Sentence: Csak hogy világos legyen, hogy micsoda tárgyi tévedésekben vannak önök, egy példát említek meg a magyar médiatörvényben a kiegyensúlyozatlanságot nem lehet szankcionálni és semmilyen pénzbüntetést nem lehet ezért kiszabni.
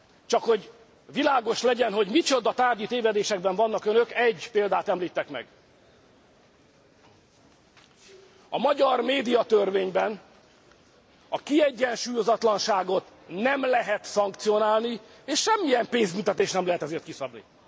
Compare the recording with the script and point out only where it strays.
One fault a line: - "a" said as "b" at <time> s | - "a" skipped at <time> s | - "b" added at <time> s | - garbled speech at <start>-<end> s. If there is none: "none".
none